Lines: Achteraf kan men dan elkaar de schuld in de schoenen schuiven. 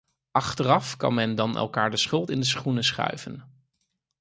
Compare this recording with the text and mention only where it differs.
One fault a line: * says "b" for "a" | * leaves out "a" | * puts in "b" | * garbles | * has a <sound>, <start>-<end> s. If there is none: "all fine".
all fine